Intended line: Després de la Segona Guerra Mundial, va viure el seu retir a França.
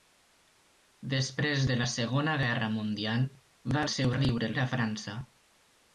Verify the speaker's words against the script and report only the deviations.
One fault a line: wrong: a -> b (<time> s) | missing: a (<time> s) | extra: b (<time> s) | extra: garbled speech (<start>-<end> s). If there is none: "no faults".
missing: viure (3.9 s)
wrong: retir -> viure (4.2 s)